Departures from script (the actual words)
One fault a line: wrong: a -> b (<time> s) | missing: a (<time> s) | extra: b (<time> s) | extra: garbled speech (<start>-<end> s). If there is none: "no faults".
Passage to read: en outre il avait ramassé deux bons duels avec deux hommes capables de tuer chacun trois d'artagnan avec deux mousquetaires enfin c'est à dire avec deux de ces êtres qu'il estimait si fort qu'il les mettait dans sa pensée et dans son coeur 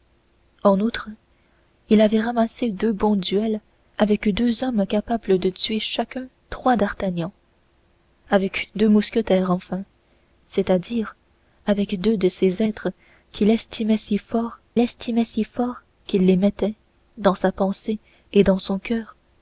extra: estimait si fort (14.8 s)